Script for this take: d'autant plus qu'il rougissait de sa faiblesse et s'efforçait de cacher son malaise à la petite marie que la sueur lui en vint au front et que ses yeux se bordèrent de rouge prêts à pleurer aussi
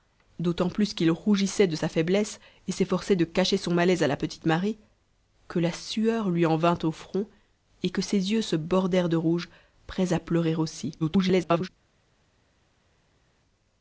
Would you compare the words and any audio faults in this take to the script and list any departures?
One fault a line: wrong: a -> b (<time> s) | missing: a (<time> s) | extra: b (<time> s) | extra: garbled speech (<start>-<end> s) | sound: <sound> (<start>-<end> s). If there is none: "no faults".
extra: garbled speech (11.0-11.7 s)